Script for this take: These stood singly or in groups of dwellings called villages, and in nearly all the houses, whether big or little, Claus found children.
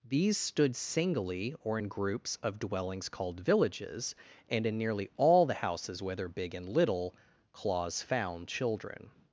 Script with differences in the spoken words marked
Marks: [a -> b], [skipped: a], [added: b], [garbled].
These stood singly or in groups of dwellings called villages, and in nearly all the houses, whether big [or -> and] little, Claus found children.